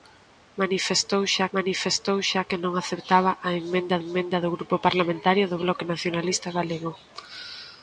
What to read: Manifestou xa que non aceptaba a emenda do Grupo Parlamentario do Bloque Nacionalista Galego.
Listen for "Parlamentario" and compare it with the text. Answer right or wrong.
right